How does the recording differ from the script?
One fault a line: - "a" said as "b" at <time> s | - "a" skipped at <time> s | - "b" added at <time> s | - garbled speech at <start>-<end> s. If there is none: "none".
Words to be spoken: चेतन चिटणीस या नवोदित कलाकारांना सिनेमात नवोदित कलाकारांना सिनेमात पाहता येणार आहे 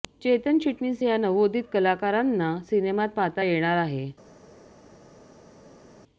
- "नवोदित कलाकारांना सिनेमात" skipped at 3.1 s